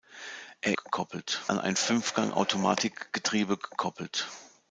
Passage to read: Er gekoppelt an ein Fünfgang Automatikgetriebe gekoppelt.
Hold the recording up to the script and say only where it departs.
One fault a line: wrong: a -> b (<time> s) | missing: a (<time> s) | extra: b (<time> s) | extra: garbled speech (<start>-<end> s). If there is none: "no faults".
no faults